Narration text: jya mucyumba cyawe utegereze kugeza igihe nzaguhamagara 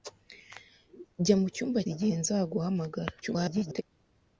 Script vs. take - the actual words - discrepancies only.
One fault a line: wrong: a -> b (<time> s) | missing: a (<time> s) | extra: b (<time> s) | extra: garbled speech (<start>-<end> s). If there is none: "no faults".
missing: cyawe utegereze kugeza (1.8 s)
extra: garbled speech (3.2-3.8 s)